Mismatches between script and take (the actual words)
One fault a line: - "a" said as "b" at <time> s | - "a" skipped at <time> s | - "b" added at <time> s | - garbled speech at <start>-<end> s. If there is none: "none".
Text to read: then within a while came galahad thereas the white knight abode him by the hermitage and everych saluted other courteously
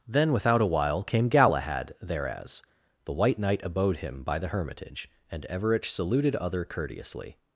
- "within" said as "without" at 0.3 s